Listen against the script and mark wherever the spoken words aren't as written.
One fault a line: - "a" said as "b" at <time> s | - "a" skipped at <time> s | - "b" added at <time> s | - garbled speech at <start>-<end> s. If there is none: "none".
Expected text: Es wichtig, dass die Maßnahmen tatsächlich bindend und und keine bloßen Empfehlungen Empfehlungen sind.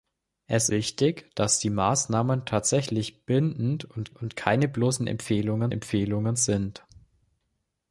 none